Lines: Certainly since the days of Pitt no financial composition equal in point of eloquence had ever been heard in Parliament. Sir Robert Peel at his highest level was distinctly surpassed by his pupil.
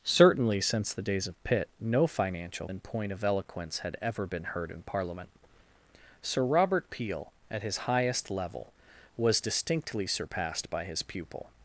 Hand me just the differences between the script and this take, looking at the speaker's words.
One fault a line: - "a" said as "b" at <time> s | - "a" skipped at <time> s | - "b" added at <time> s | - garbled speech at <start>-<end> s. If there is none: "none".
- "composition equal" skipped at 2.7 s